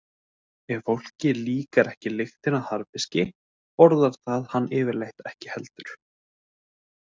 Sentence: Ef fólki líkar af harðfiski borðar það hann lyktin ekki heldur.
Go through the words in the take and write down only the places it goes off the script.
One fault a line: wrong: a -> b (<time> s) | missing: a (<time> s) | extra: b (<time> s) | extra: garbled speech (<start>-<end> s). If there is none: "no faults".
extra: ekki lyktin (1.9 s)
wrong: lyktin -> yfirleitt (4.8 s)